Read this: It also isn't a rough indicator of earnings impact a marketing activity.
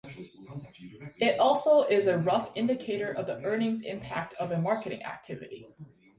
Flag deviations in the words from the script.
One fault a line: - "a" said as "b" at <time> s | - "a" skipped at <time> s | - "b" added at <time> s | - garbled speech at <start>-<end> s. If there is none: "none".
- "isn't" said as "is" at 1.8 s
- "the" added at 3.3 s
- "of" added at 4.4 s